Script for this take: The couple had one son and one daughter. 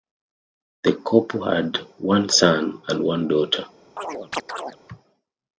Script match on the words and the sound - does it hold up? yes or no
no